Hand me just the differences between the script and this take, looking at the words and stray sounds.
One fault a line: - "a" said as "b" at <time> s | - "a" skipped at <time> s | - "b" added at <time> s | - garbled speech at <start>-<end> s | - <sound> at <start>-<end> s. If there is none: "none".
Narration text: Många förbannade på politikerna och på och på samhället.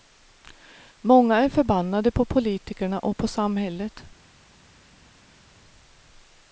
- "är" added at 1.4 s
- "och på" skipped at 3.3 s